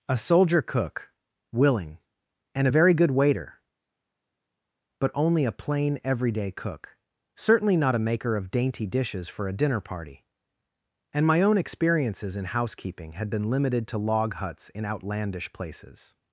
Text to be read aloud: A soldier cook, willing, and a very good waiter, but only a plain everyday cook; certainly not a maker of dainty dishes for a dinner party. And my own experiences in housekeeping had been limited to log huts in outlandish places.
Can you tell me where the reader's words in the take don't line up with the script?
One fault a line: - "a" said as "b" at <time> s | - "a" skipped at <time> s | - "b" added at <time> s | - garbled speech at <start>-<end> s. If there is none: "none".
none